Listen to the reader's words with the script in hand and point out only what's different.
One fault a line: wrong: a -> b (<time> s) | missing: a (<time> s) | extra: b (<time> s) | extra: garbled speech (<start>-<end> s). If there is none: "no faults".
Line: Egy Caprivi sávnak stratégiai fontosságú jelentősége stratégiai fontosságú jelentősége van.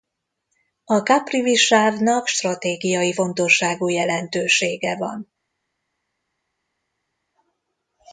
wrong: Egy -> A (0.8 s)
missing: stratégiai fontosságú jelentősége (5.0 s)